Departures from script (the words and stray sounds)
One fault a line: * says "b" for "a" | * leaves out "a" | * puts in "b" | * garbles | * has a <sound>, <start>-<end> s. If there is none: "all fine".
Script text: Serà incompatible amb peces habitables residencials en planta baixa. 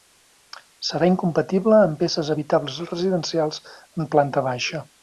all fine